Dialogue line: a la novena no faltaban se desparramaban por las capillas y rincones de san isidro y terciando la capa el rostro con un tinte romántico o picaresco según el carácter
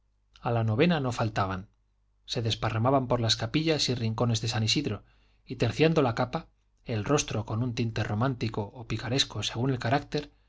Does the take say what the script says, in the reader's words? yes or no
yes